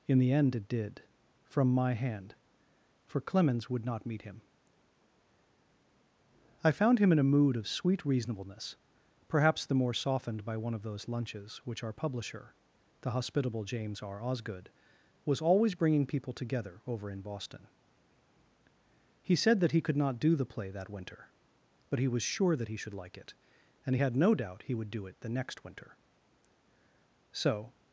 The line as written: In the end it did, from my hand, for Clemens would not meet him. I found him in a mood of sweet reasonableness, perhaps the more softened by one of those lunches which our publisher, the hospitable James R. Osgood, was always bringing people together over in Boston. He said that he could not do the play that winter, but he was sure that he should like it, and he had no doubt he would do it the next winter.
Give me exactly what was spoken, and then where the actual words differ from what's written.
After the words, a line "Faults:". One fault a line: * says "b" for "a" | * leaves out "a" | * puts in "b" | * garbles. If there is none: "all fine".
In the end it did, from my hand, for Clemens would not meet him. I found him in a mood of sweet reasonableness, perhaps the more softened by one of those lunches which our publisher, the hospitable James R. Osgood, was always bringing people together over in Boston. He said that he could not do the play that winter, but he was sure that he should like it, and he had no doubt he would do it the next winter. So
Faults:
* puts in "So"